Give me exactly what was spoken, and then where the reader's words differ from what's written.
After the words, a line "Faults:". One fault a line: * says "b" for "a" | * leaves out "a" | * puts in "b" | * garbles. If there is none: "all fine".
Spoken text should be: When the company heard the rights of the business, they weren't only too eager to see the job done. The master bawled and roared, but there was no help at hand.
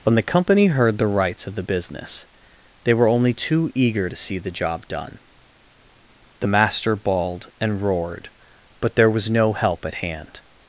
When the company heard the rights of the business, they were only too eager to see the job done. The master bawled and roared, but there was no help at hand.
Faults:
* says "were" for "weren't"